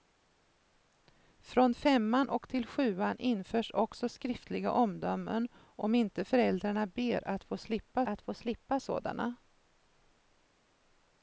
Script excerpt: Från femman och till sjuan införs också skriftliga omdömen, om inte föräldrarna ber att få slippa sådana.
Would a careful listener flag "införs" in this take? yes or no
no